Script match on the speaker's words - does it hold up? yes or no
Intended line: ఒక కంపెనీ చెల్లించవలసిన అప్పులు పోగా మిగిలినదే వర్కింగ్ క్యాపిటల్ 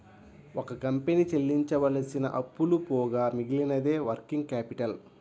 yes